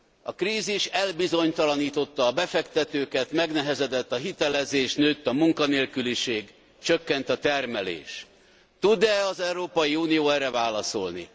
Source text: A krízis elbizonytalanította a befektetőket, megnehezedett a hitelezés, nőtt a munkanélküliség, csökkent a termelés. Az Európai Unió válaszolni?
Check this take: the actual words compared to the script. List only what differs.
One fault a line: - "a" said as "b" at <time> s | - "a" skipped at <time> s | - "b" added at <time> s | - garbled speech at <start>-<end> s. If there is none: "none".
- "Tud e" added at 8.8 s
- "erre" added at 10.3 s